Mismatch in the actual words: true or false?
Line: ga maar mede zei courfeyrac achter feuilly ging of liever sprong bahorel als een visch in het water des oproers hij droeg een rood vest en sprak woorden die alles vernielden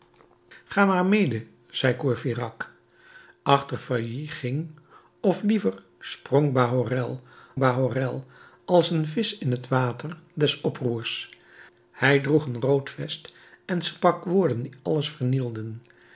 true